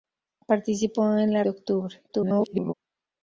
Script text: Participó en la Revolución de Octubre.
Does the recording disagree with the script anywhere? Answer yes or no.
yes